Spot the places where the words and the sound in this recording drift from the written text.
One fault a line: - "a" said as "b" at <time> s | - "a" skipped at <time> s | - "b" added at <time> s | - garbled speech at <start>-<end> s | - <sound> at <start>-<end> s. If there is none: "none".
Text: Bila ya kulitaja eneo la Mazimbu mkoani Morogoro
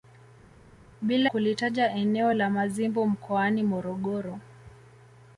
- "ya" skipped at 1.3 s